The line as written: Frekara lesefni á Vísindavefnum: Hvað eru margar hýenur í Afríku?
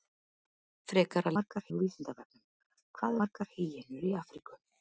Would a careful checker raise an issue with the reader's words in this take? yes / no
yes